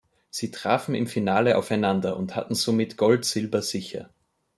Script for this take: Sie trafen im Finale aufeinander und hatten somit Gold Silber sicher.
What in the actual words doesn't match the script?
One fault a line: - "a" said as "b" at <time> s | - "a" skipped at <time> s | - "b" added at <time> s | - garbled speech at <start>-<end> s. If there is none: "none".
none